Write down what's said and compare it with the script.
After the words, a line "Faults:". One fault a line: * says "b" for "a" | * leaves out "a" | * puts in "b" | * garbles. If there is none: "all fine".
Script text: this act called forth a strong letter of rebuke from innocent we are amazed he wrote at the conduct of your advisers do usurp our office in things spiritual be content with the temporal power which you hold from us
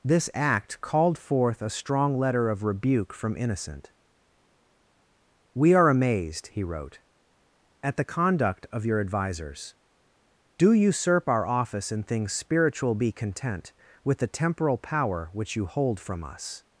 this act called forth a strong letter of rebuke from innocent we are amazed he wrote at the conduct of your advisers do usurp our office in things spiritual be content with the temporal power which you hold from us
Faults:
all fine